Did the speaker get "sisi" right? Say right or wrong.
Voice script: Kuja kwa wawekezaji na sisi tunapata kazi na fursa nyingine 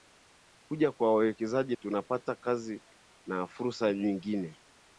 wrong